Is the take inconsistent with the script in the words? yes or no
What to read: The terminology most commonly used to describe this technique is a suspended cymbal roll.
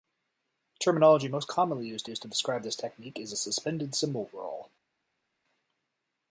yes